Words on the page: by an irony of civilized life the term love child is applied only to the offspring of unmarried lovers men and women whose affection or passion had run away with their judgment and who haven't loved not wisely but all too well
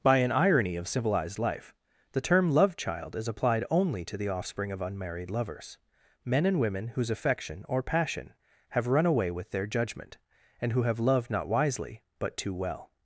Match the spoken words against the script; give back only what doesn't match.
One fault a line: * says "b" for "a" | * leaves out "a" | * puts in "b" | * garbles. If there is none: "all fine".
* says "have" for "had"
* says "have" for "haven't"
* leaves out "all"